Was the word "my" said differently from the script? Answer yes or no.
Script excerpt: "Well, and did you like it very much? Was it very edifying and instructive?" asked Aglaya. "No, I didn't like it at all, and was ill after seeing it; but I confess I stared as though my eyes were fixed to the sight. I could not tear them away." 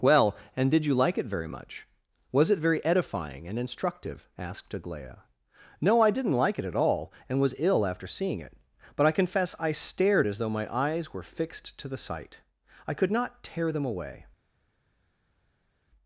no